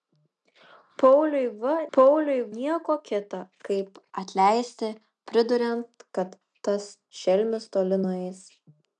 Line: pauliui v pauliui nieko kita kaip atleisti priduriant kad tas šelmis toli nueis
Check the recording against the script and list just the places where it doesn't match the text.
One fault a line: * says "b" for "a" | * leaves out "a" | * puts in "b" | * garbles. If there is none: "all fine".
all fine